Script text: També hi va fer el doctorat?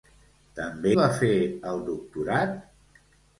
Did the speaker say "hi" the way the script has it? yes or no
no